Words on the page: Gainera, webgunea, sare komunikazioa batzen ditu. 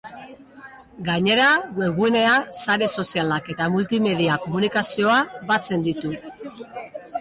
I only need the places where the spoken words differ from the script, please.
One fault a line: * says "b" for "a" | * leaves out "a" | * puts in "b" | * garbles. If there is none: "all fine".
* puts in "sozialak eta multimedia"